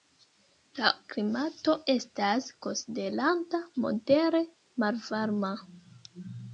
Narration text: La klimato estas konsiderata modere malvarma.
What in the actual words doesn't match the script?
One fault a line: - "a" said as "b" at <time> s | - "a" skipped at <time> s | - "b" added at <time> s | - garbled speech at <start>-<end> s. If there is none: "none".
none